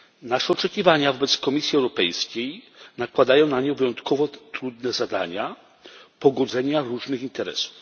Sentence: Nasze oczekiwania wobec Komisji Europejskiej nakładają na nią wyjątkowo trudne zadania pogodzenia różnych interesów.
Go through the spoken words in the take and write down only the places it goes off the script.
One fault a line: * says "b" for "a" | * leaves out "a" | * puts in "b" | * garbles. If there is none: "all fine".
all fine